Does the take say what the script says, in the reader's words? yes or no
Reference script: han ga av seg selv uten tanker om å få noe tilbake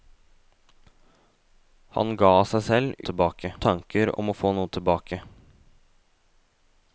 no